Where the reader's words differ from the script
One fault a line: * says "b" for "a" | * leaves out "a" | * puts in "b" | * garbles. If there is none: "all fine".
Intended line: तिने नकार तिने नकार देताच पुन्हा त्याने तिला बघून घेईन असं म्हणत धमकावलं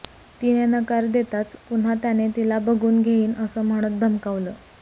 * leaves out "तिने नकार"